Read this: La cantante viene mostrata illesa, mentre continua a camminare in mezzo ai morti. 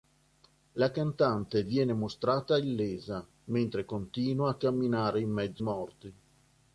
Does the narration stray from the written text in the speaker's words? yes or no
yes